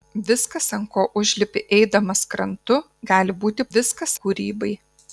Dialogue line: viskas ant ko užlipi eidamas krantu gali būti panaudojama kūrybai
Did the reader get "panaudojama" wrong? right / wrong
wrong